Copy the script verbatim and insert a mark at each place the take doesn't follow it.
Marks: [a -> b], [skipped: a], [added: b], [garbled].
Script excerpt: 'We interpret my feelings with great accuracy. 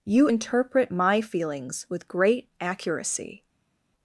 ['We -> You] interpret my feelings with great accuracy.